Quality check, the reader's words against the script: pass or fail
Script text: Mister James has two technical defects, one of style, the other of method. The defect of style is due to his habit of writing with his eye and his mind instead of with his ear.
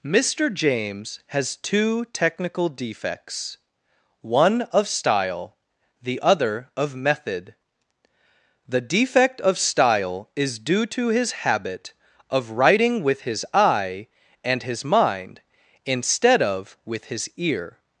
pass